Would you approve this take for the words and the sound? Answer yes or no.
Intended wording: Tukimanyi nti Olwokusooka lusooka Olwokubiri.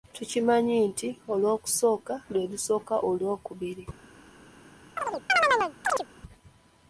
no